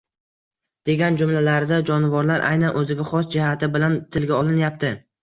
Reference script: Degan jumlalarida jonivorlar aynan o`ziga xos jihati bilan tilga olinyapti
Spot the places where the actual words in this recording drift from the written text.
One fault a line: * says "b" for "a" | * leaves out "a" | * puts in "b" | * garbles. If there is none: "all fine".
all fine